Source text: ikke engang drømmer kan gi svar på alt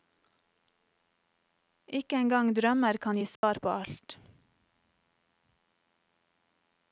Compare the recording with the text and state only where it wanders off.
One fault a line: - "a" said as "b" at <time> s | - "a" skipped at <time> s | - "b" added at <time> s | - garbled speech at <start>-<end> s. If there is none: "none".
none